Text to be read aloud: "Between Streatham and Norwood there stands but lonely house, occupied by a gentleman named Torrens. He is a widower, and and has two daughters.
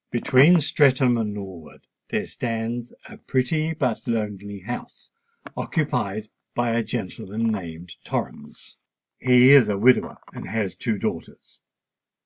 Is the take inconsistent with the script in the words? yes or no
yes